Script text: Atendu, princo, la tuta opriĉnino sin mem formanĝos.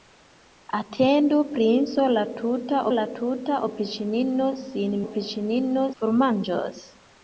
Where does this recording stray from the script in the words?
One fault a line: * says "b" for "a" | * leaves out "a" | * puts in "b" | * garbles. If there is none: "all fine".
* puts in "la tuta"
* says "opriĉnino" for "mem"